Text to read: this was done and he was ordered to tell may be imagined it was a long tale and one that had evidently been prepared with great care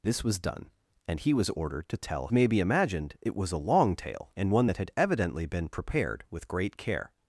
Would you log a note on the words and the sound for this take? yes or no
no